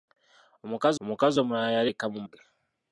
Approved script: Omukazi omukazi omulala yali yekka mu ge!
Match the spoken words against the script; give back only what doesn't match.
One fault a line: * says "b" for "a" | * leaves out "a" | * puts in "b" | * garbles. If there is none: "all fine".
all fine